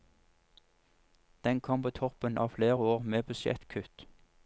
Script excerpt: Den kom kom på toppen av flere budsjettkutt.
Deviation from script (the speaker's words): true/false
true